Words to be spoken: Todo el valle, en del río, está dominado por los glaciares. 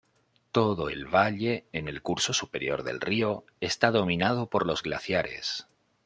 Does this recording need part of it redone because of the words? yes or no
yes